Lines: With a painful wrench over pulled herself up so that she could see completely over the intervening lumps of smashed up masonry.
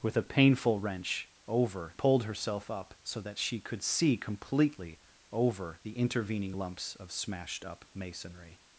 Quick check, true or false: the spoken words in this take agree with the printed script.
true